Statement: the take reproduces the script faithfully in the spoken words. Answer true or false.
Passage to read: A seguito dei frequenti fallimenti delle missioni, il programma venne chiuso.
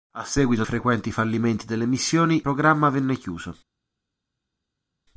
false